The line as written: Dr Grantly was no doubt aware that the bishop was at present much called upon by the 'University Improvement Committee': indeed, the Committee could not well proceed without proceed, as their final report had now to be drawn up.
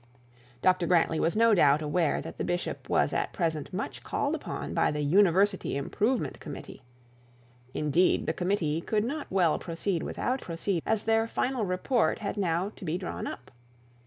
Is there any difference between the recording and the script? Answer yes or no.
no